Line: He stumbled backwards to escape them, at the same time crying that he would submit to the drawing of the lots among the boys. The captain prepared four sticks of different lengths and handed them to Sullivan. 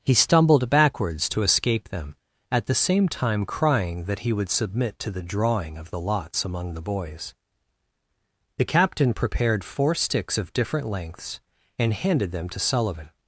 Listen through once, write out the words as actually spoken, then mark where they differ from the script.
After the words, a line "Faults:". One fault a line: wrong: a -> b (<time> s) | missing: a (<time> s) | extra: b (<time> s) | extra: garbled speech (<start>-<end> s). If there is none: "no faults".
He stumbled backwards to escape them, at the same time crying that he would submit to the drawing of the lots among the boys. The captain prepared four sticks of different lengths and handed them to Sullivan.
Faults:
no faults